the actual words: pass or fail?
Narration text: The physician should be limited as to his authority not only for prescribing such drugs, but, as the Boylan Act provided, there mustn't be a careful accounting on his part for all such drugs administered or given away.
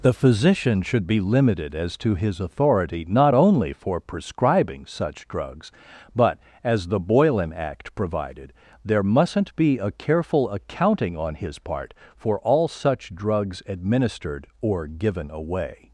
pass